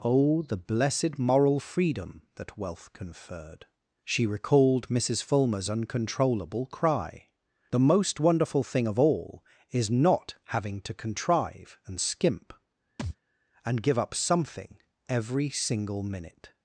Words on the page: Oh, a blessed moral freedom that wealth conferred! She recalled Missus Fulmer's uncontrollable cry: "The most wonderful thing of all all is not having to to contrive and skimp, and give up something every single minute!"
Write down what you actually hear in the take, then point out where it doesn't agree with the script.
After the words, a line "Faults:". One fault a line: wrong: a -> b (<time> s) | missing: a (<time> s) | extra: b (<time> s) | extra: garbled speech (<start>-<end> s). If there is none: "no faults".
Oh, the blessed moral freedom that wealth conferred! She recalled Missus Fulmer's uncontrollable cry: "The most wonderful thing of all is not having to contrive and skimp, and give up something every single minute!"
Faults:
wrong: a -> the (0.4 s)
missing: all (9.4 s)
missing: to (10.9 s)